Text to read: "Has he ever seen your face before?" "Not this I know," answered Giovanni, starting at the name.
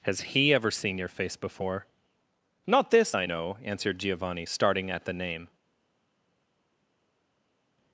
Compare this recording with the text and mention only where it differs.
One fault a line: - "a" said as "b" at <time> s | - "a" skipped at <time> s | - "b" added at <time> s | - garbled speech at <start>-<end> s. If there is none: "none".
none